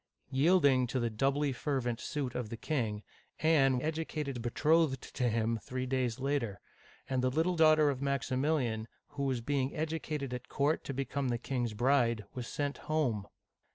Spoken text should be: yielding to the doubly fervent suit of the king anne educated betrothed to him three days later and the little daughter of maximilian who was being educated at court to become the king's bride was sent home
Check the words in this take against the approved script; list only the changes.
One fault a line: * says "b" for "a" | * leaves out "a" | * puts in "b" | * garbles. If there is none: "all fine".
all fine